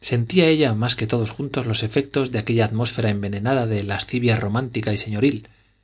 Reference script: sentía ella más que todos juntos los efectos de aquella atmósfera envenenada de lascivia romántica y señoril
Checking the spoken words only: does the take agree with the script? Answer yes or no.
yes